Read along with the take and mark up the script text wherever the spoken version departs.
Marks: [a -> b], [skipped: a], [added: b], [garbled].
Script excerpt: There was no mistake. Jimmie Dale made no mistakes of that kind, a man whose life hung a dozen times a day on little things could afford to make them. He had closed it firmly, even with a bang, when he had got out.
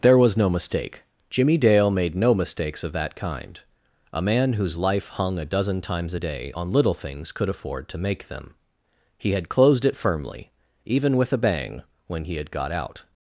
There was no mistake. Jimmie Dale made no mistakes of that kind, a man whose life hung a dozen times a day on little things could afford to make them. He had closed it firmly, even with a bang, when he had got out.